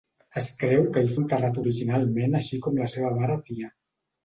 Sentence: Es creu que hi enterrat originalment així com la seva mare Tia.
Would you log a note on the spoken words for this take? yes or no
no